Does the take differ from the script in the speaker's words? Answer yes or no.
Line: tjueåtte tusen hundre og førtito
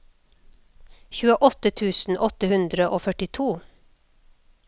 yes